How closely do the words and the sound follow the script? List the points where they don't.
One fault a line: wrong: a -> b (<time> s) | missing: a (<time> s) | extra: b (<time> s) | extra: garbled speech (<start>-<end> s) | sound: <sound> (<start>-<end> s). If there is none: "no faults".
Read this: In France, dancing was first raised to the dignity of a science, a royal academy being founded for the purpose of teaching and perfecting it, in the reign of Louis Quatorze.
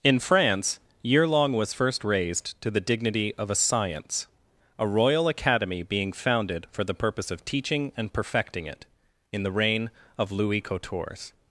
wrong: dancing -> yearlong (1.1 s)